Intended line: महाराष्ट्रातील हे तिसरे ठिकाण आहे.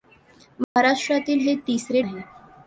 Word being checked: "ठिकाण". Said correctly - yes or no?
no